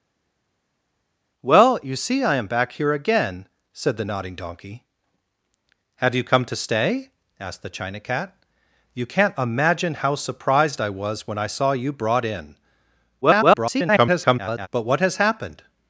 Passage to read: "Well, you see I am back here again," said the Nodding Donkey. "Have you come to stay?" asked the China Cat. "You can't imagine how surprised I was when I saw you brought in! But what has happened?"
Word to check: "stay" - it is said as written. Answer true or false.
true